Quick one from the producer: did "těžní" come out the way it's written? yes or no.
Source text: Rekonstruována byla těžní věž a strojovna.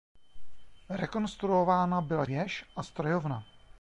no